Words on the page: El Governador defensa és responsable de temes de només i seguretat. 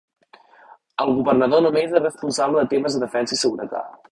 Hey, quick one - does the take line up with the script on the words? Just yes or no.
no